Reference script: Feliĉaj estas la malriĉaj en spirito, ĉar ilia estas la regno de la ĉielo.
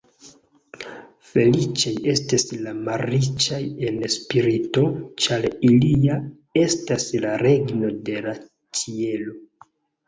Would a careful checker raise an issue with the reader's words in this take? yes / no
no